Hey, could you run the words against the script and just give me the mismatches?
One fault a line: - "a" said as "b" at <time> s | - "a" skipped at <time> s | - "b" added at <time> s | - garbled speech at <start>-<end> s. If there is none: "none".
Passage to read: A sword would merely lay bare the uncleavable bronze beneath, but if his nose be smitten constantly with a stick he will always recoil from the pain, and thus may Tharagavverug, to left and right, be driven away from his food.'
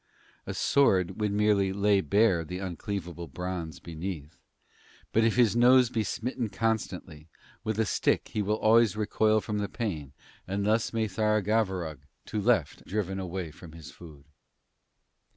- "and right be" skipped at 12.8 s